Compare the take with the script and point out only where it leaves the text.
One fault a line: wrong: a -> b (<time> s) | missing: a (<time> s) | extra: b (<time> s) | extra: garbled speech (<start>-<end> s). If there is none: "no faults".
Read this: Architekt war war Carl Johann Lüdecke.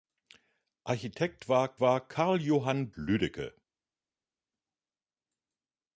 no faults